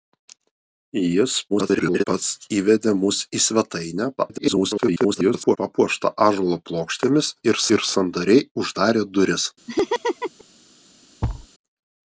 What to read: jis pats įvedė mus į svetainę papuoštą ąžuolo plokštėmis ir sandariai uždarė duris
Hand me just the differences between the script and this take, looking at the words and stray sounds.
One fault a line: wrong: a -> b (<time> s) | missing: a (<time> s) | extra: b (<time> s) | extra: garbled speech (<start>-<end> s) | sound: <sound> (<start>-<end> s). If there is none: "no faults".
extra: garbled speech (1.5-2.0 s)
extra: garbled speech (4.2-5.6 s)
extra: ir (7.8 s)
sound: laugh (9.7-10.4 s)
sound: thud (11.2-11.5 s)